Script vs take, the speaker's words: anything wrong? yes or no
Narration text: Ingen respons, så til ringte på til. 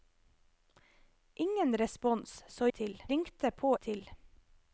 no